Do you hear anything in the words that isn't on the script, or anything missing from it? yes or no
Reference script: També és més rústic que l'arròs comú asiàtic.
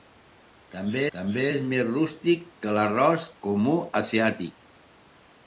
yes